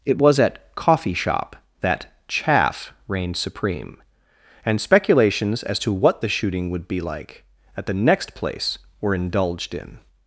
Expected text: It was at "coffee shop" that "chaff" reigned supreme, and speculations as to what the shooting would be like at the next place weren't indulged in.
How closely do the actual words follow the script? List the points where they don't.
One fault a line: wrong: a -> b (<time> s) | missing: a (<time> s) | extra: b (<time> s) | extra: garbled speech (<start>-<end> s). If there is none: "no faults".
wrong: weren't -> were (9.0 s)